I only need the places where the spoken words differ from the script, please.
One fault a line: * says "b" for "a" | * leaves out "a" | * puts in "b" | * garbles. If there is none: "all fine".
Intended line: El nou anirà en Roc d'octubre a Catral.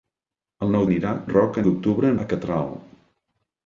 all fine